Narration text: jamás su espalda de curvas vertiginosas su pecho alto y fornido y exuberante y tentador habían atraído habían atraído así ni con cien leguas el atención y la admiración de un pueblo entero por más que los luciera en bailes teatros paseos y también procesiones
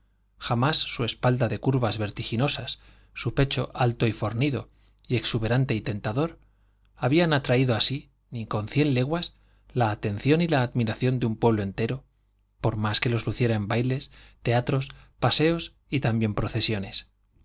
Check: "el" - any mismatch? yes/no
yes